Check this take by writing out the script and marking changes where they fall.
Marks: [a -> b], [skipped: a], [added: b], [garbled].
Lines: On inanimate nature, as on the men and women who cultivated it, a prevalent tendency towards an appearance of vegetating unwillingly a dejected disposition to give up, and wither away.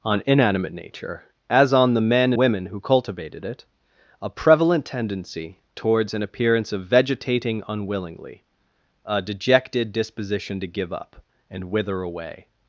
On inanimate nature, as on the men [skipped: and] women who cultivated it, a prevalent tendency towards an appearance of vegetating unwillingly a dejected disposition to give up, and wither away.